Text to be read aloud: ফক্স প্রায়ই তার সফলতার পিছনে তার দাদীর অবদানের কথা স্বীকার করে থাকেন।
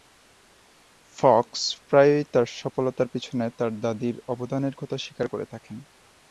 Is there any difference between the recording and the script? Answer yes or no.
no